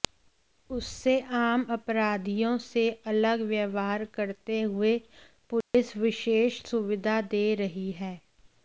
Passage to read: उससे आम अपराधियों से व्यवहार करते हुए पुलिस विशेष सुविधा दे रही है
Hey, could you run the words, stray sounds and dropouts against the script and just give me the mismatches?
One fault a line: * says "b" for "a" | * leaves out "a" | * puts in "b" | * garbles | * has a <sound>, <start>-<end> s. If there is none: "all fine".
* puts in "अलग"
* has a dropout, 5.6-5.7 s